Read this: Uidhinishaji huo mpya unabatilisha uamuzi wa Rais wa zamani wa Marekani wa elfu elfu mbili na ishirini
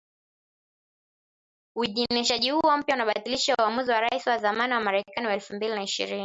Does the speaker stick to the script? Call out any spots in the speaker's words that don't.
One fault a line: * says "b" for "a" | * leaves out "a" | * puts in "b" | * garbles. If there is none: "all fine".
* leaves out "elfu"